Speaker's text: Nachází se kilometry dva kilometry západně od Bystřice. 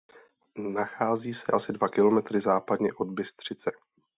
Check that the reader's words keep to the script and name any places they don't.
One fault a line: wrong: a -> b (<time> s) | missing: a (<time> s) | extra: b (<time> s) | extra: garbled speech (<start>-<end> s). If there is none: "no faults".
wrong: kilometry -> asi (1.5 s)